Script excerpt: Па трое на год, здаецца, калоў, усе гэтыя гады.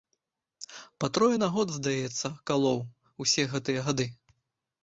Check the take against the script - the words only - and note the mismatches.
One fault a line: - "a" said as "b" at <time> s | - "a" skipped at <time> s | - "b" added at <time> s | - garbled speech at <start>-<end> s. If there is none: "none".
none